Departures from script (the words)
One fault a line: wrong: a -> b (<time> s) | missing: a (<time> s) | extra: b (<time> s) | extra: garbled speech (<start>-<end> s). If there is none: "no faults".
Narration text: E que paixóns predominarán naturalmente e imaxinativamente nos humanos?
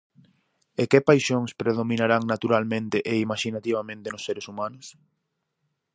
extra: seres (4.3 s)